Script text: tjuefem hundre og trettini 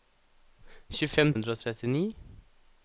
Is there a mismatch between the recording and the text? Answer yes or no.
no